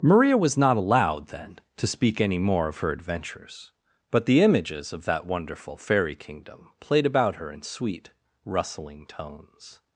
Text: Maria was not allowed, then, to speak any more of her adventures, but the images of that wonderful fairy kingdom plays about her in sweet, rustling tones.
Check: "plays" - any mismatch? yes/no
yes